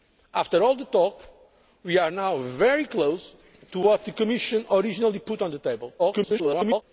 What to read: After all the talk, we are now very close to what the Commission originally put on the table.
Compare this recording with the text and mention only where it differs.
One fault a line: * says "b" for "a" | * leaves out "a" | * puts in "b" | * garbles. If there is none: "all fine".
* garbles